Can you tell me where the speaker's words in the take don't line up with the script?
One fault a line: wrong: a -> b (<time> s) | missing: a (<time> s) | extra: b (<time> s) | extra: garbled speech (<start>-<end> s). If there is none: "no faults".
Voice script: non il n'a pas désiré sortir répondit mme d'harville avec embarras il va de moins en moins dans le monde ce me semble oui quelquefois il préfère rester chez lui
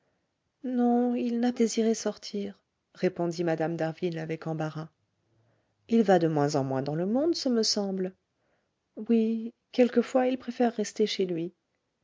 missing: pas (1.5 s)